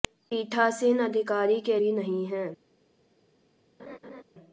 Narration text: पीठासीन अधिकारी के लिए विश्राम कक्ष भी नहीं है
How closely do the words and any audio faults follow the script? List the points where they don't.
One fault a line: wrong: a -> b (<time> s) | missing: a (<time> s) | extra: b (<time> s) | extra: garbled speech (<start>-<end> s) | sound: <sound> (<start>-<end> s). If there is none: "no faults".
missing: लिए विश्राम कक्ष (1.8 s)
sound: laugh (3.8-4.2 s)